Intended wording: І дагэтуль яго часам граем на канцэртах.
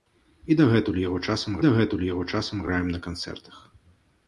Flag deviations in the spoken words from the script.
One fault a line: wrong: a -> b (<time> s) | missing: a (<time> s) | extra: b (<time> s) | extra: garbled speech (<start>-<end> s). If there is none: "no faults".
extra: дагэтуль яго часам (1.6 s)